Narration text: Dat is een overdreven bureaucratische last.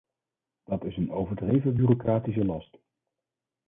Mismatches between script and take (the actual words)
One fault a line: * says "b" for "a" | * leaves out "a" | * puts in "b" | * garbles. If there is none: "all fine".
all fine